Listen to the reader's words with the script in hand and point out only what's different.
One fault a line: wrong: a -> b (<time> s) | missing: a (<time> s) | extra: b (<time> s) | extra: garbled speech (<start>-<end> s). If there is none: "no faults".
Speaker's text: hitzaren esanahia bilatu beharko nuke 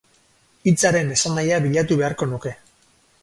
no faults